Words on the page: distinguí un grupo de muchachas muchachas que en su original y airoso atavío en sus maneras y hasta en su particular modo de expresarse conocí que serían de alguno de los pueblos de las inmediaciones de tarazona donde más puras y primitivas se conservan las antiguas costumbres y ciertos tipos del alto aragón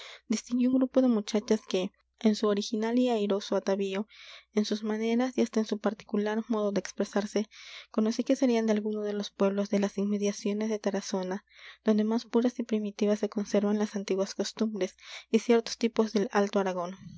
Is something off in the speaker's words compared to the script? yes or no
yes